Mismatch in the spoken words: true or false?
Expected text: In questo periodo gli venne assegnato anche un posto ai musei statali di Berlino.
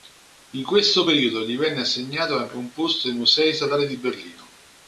false